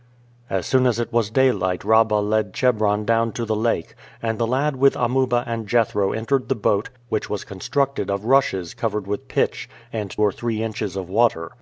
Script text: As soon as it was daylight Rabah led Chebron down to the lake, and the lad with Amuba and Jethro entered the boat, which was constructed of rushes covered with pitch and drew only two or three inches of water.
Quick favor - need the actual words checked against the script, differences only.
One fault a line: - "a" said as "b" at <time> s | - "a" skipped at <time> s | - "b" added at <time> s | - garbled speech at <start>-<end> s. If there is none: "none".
- "drew only two" skipped at 10.2 s